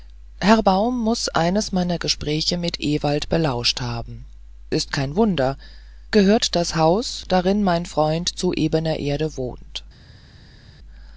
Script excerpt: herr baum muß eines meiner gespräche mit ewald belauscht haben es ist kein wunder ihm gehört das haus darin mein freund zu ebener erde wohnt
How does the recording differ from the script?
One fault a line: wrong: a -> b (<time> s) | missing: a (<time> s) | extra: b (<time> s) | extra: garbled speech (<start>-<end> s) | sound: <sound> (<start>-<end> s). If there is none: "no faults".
missing: es (4.3 s)
missing: ihm (5.6 s)